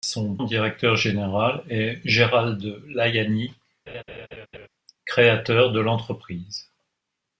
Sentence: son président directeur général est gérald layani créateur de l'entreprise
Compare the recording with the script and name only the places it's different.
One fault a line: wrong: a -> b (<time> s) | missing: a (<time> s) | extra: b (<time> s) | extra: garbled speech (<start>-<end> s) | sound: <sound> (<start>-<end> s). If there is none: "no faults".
missing: président (0.4 s)
sound: laugh (3.9-4.7 s)